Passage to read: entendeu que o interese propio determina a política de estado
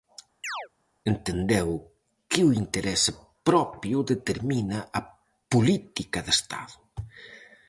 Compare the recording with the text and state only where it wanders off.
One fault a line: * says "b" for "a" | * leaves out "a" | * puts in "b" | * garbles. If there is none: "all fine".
all fine